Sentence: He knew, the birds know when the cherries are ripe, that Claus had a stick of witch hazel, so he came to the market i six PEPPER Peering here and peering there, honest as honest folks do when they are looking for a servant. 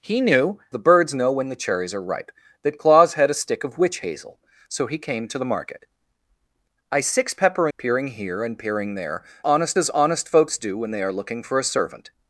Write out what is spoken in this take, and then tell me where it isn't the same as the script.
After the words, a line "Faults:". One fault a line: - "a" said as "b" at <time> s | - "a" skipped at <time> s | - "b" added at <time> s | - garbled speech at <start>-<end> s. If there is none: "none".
He knew, the birds know when the cherries are ripe, that Claus had a stick of witch hazel, so he came to the market i six PEPPER Peering here and peering there, honest as honest folks do when they are looking for a servant.
Faults:
none